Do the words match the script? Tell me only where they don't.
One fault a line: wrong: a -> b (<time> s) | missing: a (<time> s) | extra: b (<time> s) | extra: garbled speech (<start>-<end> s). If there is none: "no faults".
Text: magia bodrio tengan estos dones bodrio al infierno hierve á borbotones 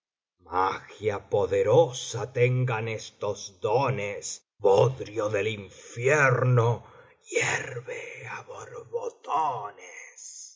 wrong: bodrio -> poderosa (1.3 s)
wrong: al -> del (5.3 s)